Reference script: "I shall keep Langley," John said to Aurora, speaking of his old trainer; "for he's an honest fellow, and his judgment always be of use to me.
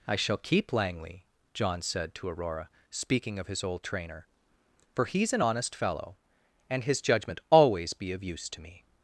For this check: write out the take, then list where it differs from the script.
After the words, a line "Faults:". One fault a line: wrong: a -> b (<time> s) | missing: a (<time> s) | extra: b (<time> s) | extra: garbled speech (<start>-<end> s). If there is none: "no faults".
"I shall keep Langley," John said to Aurora, speaking of his old trainer; "for he's an honest fellow, and his judgment always be of use to me.
Faults:
no faults